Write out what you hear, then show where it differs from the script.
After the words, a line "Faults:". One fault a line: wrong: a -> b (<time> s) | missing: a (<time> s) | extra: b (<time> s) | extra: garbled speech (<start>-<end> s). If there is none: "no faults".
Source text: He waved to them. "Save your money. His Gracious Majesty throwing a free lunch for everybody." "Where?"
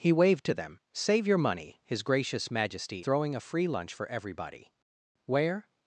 He waved to them. "Save your money. His Gracious Majesty throwing a free lunch for everybody." "Where?"
Faults:
no faults